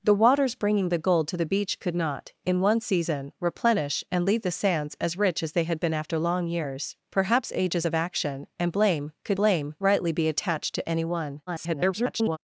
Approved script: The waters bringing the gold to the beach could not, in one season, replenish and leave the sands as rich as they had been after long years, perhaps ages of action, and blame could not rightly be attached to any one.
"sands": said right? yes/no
yes